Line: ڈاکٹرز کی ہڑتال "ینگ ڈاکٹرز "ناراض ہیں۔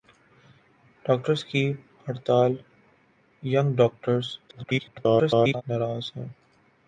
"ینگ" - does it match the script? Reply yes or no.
yes